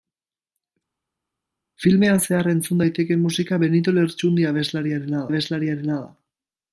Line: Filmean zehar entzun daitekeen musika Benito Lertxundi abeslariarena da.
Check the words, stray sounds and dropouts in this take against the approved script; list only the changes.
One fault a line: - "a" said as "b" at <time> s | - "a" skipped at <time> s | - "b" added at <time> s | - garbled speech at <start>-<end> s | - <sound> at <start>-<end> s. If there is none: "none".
- "abeslariarena" added at 5.3 s